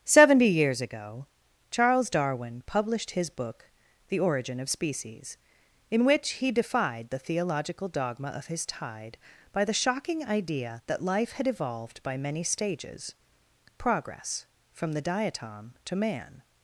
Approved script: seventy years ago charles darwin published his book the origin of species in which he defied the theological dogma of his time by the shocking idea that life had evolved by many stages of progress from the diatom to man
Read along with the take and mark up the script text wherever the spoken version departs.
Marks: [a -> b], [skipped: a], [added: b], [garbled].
seventy years ago charles darwin published his book the origin of species in which he defied the theological dogma of his [time -> tide] by the shocking idea that life had evolved by many stages [skipped: of] progress from the diatom to man